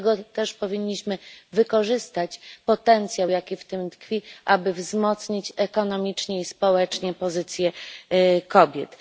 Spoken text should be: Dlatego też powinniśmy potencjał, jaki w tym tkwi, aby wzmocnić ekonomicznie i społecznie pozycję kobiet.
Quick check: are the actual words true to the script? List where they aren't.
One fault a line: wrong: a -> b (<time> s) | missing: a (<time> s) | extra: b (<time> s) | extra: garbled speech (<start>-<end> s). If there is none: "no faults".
extra: wykorzystać (1.5 s)